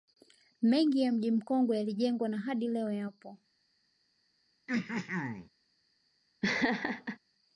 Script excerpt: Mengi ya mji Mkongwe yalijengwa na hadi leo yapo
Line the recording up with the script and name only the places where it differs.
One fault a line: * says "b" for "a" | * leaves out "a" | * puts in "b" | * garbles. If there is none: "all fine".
all fine